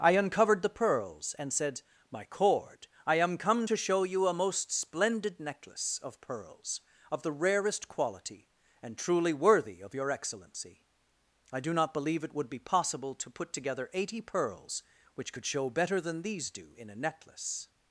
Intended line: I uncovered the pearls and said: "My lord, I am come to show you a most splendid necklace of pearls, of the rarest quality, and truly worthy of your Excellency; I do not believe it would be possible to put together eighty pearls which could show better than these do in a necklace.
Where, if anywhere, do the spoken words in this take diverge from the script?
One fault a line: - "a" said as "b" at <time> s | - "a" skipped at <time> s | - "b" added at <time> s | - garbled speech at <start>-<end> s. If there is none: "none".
- "lord" said as "cord" at 2.2 s